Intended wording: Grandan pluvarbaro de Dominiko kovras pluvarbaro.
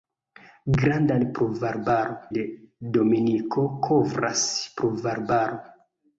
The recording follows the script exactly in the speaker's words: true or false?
true